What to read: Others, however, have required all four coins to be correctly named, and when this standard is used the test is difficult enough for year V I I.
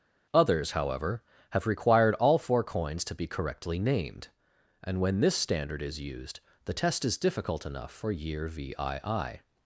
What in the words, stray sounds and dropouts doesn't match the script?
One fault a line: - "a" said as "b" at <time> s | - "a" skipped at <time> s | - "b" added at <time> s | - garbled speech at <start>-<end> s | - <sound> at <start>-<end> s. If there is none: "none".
none